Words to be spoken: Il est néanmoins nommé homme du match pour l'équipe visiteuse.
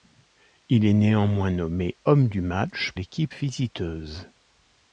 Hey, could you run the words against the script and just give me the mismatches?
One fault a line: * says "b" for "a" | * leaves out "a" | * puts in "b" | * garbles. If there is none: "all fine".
* leaves out "pour"